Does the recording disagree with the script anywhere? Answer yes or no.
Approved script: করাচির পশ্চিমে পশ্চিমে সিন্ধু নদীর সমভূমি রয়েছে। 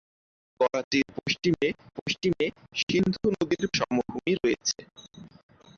no